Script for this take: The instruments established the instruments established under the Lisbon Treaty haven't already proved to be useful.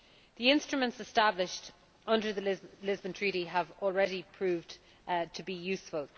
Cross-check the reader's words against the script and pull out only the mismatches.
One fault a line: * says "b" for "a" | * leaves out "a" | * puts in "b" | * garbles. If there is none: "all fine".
* leaves out "the instruments established"
* says "have" for "haven't"